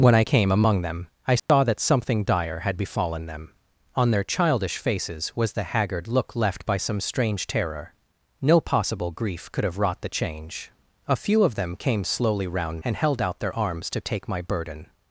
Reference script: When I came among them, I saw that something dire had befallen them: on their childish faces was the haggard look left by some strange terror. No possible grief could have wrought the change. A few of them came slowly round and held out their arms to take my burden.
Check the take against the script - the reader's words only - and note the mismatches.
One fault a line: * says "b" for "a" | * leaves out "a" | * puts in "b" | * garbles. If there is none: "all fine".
all fine